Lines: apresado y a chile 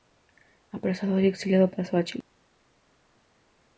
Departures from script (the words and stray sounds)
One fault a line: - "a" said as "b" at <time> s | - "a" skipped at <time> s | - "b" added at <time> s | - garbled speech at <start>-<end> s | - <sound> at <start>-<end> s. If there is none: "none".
- "exiliado pasó" added at 1.3 s